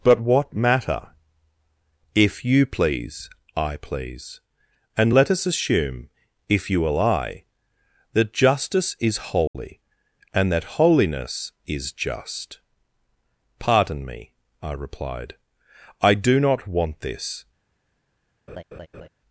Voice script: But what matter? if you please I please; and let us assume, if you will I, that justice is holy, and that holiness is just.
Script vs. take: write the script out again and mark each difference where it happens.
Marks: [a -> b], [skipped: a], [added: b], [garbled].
But what matter? if you please I please; and let us assume, if you will I, that justice is holy, and that holiness is just. [added: Pardon me I replied I do not want this]